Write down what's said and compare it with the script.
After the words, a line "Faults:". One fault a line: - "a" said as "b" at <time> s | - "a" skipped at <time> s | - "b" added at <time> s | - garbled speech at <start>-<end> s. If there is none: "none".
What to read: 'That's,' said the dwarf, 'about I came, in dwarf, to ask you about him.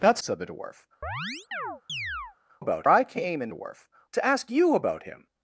'That's,' said the dwarf, 'about I came, in dwarf, to ask you about him.
Faults:
none